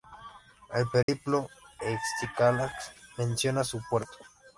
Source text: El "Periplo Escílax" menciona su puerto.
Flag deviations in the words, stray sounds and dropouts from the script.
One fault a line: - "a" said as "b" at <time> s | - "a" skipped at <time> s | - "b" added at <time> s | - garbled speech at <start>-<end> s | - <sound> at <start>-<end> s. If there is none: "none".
- dropout at 1.0-1.1 s